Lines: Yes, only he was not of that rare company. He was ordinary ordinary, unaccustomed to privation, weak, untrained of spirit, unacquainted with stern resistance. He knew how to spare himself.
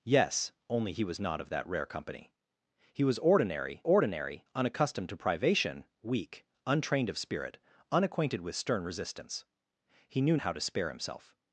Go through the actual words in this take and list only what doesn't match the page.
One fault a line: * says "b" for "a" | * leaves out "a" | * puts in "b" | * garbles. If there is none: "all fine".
all fine